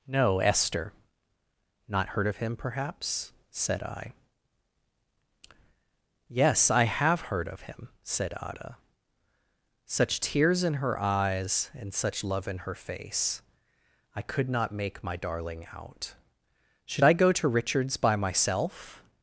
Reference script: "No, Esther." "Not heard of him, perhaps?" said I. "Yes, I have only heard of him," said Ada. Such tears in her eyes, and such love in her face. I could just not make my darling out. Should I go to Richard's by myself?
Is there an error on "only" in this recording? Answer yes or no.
yes